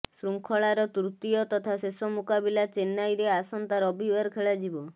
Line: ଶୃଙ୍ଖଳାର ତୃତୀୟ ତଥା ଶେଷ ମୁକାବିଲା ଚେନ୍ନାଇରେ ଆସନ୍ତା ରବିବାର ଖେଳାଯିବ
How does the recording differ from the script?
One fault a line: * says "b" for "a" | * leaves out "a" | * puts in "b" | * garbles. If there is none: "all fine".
all fine